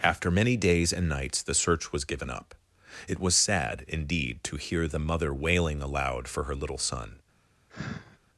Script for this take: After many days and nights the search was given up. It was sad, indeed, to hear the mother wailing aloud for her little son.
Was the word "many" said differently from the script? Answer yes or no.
no